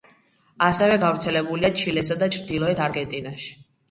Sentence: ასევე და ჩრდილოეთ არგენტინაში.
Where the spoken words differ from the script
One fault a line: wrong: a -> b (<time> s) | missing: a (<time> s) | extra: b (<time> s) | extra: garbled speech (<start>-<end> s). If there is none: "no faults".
extra: გავრცელებულია ჩილესა (1.0 s)